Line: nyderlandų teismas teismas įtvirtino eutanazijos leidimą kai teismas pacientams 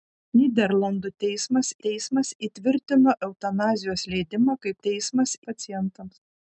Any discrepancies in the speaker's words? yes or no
no